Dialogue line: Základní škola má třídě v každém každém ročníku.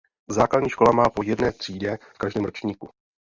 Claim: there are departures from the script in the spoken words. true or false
true